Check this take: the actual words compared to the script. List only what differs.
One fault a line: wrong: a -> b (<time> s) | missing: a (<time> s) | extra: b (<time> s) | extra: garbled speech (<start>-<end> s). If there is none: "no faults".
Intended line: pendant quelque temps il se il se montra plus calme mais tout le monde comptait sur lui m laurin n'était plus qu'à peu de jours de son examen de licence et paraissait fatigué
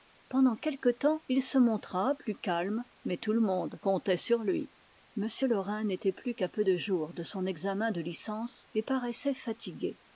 missing: il se (1.6 s)